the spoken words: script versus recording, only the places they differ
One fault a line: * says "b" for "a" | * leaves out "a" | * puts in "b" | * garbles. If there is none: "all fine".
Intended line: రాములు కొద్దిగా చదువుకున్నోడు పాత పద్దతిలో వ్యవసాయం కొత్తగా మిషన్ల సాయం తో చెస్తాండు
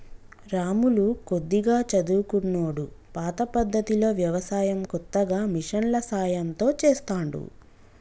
all fine